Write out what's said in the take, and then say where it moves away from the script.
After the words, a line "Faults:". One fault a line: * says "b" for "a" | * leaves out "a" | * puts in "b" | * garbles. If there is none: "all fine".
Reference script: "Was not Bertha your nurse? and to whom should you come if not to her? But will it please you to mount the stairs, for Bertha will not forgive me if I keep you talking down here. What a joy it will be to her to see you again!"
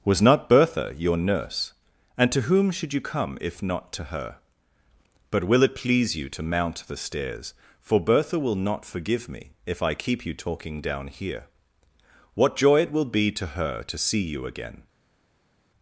"Was not Bertha your nurse? and to whom should you come if not to her? But will it please you to mount the stairs, for Bertha will not forgive me if I keep you talking down here. What joy it will be to her to see you again!"
Faults:
* leaves out "a"